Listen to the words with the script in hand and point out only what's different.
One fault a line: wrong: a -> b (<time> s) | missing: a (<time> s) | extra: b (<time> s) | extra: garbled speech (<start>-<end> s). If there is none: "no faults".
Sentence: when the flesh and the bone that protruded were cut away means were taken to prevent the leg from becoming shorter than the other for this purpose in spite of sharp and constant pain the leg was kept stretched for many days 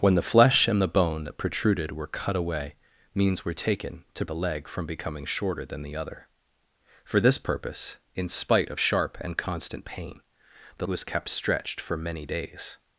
missing: prevent (4.2 s)
missing: leg (10.9 s)